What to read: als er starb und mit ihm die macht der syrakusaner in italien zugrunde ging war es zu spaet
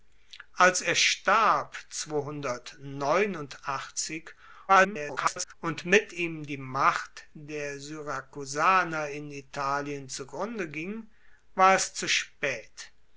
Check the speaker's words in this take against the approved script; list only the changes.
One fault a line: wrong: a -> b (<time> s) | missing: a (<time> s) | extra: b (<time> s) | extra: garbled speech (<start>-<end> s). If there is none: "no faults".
extra: garbled speech (4.7-5.5 s)